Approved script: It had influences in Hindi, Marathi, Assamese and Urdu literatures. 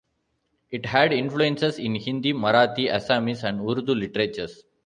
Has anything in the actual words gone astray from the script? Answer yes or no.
no